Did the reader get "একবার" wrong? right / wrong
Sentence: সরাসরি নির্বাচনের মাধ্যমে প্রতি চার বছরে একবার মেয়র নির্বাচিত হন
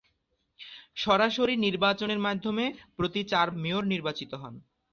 wrong